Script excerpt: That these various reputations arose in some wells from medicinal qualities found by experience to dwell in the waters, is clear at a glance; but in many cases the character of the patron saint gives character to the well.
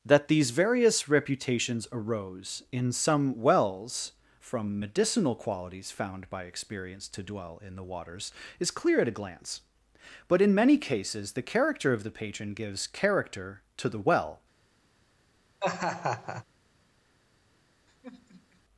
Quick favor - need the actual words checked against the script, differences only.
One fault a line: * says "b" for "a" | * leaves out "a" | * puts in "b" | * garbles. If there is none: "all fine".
* leaves out "saint"